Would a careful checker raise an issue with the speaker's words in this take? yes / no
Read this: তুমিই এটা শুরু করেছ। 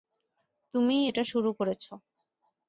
no